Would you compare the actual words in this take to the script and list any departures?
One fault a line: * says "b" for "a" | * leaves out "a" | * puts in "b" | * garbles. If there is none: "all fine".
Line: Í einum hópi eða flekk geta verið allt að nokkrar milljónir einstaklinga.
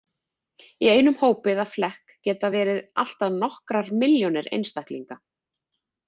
all fine